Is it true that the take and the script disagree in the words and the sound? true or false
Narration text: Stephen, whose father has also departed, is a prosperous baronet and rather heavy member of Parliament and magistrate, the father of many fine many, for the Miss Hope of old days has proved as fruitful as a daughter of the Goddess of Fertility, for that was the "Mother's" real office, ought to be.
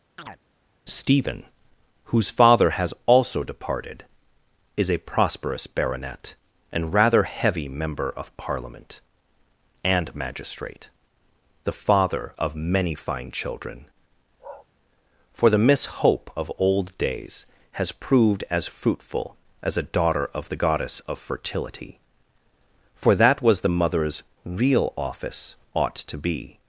true